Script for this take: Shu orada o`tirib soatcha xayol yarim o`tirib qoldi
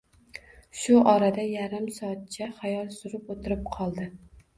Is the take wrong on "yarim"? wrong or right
wrong